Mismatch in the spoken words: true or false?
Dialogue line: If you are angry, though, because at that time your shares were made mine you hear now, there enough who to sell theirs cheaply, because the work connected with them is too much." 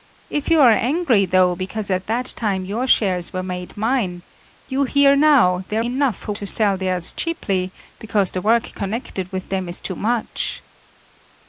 false